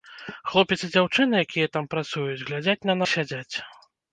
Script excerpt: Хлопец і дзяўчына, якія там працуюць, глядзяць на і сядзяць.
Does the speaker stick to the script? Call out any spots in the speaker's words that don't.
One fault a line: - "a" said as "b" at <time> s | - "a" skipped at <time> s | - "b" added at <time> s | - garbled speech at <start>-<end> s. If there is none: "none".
none